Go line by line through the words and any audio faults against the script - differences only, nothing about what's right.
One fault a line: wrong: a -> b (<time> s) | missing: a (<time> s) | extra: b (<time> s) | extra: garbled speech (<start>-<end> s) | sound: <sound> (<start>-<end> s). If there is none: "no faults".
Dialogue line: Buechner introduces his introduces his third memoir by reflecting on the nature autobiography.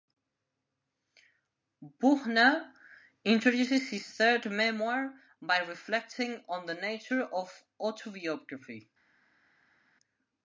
missing: introduces his (4.1 s)
extra: of (7.2 s)